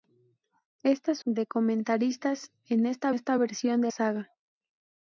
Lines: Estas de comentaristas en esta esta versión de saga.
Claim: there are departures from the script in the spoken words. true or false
false